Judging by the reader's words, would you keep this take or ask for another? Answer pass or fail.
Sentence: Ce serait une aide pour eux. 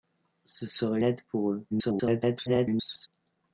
fail